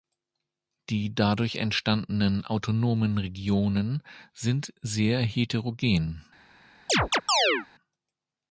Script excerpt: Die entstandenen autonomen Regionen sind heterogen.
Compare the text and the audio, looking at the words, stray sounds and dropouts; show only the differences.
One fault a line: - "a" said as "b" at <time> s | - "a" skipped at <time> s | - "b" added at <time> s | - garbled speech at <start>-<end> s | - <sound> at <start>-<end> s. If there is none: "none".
- "dadurch" added at 1.1 s
- "sehr" added at 4.8 s
- chirp at 6.9-7.7 s